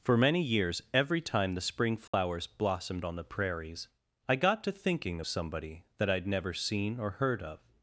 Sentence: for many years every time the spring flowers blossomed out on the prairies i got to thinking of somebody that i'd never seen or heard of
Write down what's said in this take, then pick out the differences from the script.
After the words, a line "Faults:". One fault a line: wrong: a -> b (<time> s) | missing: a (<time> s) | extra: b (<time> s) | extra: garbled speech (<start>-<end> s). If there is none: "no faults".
for many years every time the spring flowers blossomed on the prairies i got to thinking somebody that i'd never seen or heard of
Faults:
missing: out (3.0 s)
missing: of (5.2 s)